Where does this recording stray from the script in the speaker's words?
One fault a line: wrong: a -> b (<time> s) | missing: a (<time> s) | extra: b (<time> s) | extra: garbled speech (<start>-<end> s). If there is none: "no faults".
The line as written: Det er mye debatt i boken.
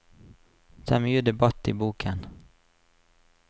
no faults